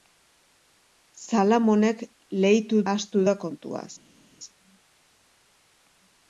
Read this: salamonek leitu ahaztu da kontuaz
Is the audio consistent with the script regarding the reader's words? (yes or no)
yes